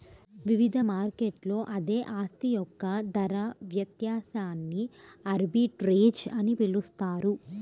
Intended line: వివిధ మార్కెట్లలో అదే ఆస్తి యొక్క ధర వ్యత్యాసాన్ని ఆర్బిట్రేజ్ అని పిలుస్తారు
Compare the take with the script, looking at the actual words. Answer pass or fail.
pass